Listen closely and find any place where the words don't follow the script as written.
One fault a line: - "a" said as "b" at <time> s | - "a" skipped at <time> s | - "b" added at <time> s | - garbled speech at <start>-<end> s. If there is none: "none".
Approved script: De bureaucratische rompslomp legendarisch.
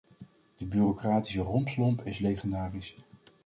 - "is" added at 2.0 s